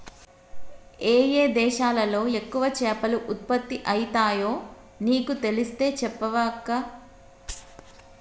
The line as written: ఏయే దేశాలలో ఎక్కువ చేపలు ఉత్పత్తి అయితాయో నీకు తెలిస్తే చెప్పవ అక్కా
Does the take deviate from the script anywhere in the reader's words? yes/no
no